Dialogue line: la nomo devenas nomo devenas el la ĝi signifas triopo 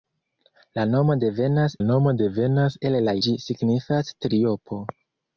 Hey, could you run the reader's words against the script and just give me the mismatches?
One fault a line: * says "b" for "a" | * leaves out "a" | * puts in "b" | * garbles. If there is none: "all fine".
all fine